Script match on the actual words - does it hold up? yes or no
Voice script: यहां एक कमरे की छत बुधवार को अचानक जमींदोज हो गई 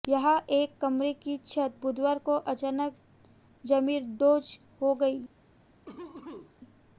yes